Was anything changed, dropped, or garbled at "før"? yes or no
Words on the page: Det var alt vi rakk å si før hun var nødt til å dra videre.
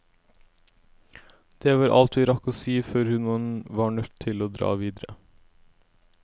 no